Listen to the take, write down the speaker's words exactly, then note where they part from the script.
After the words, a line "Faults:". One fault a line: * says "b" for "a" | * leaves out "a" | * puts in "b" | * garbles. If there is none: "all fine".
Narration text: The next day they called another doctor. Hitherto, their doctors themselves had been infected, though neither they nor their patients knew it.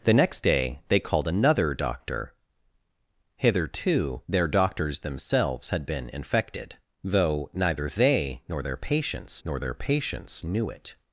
The next day they called another doctor. Hitherto, their doctors themselves had been infected, though neither they nor their patients nor their patients knew it.
Faults:
* puts in "nor their patients"